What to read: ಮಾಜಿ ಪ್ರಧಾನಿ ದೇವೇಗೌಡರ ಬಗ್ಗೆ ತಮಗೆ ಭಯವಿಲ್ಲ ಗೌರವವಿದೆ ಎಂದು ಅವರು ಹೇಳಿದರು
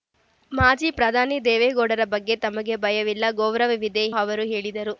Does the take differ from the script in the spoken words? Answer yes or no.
yes